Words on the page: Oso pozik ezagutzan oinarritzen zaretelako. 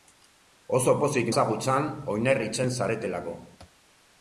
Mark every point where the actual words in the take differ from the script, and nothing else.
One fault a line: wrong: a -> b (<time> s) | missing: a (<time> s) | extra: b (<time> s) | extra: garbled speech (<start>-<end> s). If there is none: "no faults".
no faults